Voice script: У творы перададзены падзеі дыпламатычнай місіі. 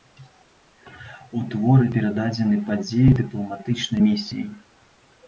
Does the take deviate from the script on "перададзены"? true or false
false